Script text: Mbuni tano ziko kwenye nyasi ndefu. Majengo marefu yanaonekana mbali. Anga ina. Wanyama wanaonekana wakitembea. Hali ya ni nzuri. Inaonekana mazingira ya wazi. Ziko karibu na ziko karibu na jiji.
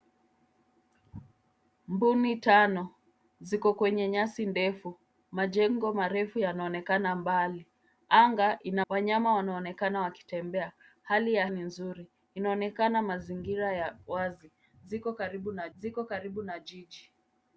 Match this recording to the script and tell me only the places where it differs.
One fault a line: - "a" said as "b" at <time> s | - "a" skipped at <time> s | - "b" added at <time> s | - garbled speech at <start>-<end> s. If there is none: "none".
none